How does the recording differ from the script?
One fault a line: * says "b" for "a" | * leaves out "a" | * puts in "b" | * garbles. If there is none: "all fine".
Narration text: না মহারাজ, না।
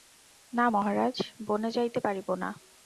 * puts in "বনে যাইতে পারিব"